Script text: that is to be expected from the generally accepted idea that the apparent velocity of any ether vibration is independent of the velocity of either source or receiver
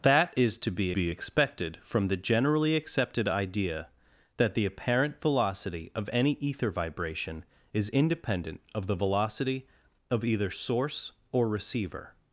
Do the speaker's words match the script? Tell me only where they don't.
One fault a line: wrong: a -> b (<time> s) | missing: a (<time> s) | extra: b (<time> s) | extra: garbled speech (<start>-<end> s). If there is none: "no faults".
extra: be (0.9 s)